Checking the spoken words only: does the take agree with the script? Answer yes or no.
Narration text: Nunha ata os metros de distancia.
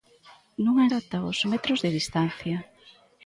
yes